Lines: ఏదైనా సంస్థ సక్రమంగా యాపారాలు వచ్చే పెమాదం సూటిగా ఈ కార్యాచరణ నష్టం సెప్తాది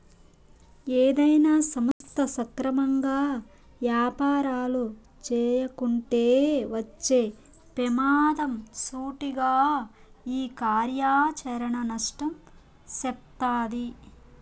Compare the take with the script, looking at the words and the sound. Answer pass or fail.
fail